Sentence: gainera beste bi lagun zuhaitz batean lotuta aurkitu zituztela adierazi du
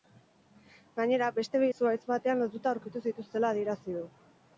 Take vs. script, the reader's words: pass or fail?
fail